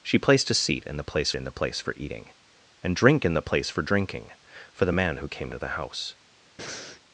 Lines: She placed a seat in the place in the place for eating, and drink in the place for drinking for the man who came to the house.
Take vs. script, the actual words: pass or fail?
pass